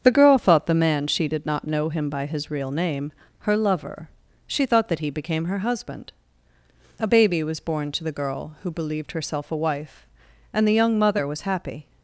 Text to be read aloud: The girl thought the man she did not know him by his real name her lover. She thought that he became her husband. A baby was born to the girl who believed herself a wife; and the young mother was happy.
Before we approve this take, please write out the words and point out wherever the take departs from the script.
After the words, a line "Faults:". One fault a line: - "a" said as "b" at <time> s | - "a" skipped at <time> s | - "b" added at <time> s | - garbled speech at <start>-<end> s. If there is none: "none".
The girl thought the man she did not know him by his real name her lover. She thought that he became her husband. A baby was born to the girl who believed herself a wife; and the young mother was happy.
Faults:
none